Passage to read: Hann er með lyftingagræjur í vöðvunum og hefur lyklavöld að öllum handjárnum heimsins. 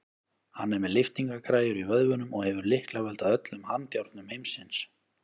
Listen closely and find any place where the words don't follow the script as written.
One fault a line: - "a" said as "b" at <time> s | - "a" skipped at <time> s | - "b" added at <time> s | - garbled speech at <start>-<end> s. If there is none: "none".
none